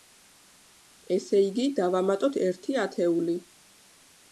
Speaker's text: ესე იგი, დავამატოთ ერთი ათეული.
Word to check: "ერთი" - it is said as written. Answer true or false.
true